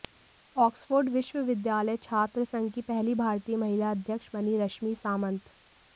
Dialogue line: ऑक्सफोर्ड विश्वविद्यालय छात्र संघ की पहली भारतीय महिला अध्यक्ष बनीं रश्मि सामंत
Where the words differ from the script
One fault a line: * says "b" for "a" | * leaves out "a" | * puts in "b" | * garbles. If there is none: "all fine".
all fine